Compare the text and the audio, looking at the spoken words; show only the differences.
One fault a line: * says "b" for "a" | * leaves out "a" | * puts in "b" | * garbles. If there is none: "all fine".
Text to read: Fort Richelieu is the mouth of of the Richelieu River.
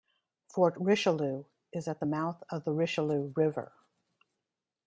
* puts in "at"
* leaves out "of"